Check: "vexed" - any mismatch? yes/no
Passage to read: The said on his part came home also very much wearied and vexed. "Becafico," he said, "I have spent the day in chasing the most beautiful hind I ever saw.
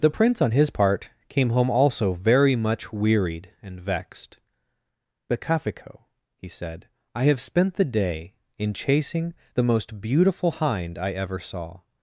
no